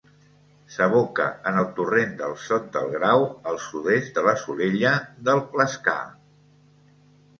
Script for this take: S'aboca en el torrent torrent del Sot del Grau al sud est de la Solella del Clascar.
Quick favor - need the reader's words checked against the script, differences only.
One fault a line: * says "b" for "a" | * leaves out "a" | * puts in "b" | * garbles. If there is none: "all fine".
* leaves out "torrent"